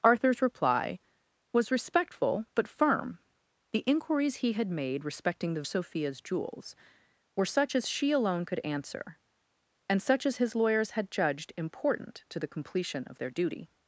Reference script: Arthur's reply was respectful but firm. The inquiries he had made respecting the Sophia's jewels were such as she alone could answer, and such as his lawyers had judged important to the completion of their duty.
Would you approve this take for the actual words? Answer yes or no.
yes